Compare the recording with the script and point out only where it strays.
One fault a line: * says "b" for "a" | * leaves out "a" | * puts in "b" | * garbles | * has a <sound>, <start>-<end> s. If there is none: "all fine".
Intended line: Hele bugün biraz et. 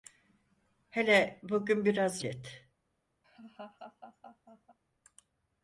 * has a laugh, 3.2-4.8 s